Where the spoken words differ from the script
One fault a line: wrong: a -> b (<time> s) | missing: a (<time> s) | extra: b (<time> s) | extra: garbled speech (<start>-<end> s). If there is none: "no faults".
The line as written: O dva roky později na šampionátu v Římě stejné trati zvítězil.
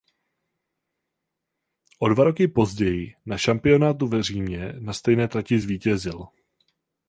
extra: na (4.8 s)